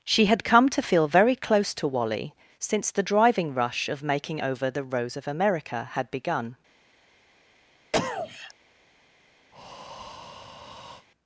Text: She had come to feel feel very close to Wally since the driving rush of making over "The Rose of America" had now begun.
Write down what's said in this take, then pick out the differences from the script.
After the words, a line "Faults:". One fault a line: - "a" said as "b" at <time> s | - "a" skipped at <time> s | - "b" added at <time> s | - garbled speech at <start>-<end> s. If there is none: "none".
She had come to feel very close to Wally since the driving rush of making over "The Rose of America" had begun.
Faults:
- "feel" skipped at 1.1 s
- "now" skipped at 6.1 s